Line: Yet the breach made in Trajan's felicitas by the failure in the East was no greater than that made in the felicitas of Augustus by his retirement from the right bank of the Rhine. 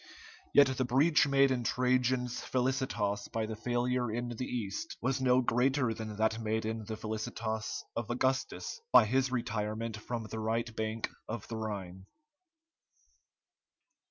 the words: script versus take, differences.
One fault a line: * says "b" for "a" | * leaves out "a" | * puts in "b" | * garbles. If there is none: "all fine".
all fine